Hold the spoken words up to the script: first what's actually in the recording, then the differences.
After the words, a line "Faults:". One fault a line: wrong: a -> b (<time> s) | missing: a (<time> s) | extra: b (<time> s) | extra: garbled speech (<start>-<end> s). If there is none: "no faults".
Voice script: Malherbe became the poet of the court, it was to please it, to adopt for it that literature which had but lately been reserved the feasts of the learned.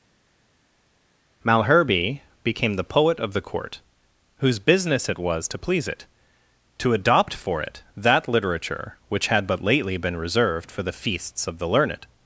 Malherbe became the poet of the court, whose business it was to please it, to adopt for it that literature which had but lately been reserved for the feasts of the learned.
Faults:
extra: whose business (4.4 s)
extra: for (10.7 s)